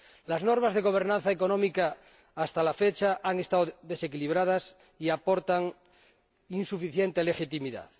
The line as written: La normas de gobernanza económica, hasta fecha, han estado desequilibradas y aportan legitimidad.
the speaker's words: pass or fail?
fail